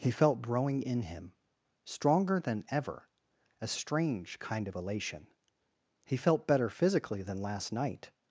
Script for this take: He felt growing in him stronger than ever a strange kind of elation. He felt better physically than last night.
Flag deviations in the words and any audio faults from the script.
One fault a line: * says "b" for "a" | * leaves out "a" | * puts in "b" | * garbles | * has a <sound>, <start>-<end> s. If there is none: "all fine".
all fine